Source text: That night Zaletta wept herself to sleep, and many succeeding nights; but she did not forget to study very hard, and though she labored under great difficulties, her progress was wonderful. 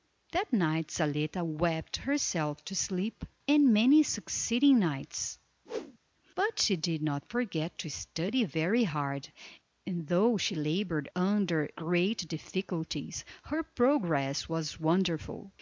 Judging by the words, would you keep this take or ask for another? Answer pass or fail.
pass